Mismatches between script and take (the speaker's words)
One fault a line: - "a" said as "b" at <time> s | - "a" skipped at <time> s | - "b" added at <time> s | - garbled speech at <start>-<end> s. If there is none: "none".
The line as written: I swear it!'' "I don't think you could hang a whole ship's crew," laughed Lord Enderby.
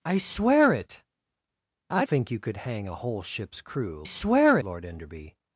- "don't" skipped at 2.0 s
- "laughed" said as "swear" at 4.0 s